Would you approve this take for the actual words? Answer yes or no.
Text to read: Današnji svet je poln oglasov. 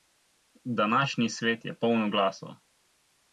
yes